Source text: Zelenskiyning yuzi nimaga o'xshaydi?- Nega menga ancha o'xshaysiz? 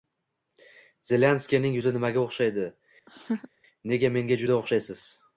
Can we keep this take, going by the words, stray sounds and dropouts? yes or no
no